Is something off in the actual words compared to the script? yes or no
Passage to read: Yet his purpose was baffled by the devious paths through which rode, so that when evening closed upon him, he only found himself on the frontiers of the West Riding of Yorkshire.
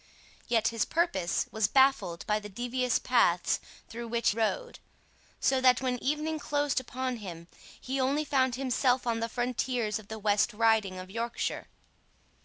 no